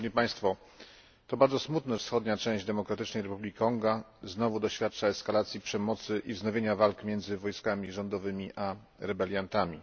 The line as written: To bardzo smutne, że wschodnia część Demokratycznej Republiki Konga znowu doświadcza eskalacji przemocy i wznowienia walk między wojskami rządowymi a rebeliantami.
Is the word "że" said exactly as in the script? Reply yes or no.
no